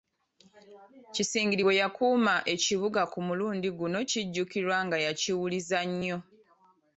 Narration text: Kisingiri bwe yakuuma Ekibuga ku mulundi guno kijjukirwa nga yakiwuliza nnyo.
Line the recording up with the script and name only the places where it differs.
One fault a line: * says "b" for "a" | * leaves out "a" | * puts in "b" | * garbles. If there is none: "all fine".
all fine